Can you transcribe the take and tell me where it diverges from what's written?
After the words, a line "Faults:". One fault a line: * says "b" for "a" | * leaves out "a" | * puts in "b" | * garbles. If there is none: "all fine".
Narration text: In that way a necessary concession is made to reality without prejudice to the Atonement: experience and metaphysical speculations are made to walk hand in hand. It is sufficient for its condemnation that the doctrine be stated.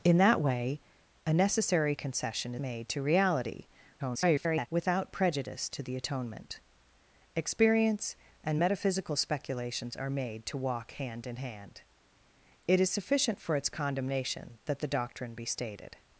In that way a necessary concession made to reality [garbled] without prejudice to the Atonement: experience and metaphysical speculations are made to walk hand in hand. It is sufficient for its condemnation that the doctrine be stated.
Faults:
* leaves out "is"
* garbles